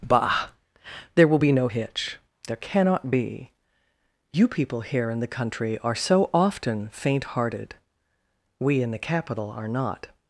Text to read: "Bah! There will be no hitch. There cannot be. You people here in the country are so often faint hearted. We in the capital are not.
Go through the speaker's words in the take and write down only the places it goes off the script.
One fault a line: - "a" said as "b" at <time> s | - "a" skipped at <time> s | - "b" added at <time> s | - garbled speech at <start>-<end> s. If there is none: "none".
none